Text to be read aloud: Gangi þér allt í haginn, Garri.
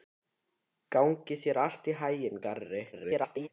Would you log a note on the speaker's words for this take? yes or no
yes